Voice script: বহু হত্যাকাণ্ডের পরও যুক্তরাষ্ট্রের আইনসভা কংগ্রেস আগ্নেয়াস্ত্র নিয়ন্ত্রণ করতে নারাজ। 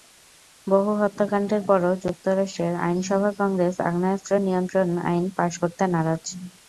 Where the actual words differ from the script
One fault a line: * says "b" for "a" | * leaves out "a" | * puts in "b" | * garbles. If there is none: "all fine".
* puts in "আইন পাস"